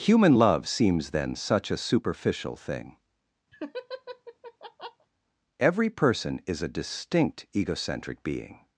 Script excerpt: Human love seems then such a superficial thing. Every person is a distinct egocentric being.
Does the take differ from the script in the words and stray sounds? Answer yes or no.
yes